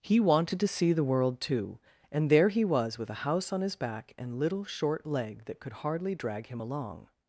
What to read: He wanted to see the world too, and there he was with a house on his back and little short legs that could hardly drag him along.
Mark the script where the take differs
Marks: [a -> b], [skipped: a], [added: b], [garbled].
He wanted to see the world too, and there he was with a house on his back and little short [legs -> leg] that could hardly drag him along.